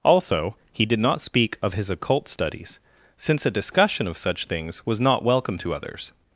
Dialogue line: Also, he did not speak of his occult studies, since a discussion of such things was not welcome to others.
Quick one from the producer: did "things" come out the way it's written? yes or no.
yes